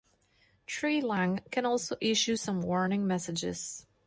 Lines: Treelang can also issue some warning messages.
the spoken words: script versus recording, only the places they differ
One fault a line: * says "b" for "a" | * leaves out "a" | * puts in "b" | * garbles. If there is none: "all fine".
all fine